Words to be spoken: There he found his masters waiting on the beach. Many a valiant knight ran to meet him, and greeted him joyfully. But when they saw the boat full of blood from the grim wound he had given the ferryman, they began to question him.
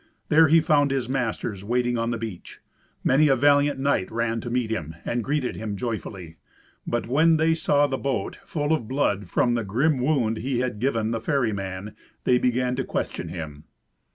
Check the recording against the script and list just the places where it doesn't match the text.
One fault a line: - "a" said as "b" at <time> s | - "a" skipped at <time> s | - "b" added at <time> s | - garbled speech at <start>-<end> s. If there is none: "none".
none